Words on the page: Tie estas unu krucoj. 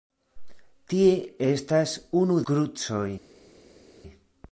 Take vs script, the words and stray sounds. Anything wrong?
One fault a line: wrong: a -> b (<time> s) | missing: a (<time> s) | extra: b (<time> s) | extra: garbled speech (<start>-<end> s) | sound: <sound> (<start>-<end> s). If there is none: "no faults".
no faults